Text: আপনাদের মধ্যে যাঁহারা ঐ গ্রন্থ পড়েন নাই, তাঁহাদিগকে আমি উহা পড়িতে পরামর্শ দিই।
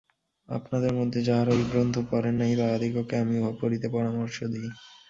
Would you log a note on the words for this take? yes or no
no